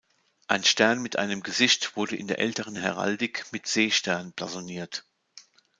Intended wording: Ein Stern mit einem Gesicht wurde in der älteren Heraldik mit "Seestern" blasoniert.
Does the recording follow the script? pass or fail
pass